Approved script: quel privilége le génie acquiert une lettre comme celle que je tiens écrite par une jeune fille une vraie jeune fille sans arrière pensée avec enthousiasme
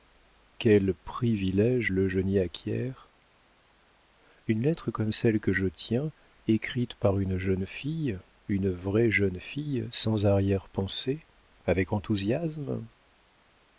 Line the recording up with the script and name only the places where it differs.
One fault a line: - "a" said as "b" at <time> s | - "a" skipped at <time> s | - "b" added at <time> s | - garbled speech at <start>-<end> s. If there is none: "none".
none